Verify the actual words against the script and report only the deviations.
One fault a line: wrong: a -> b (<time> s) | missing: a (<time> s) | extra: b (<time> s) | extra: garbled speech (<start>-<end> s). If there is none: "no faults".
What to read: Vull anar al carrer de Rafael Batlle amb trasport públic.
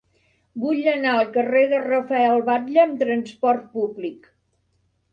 no faults